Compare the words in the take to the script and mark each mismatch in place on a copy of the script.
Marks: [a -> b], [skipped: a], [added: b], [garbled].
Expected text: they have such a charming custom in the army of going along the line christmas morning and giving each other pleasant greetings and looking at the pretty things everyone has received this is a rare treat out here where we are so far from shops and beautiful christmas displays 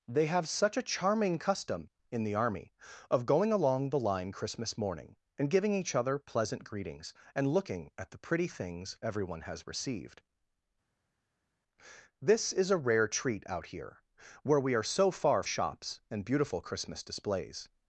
they have such a charming custom in the army of going along the line christmas morning and giving each other pleasant greetings and looking at the pretty things everyone has received this is a rare treat out here where we are so far [skipped: from] shops and beautiful christmas displays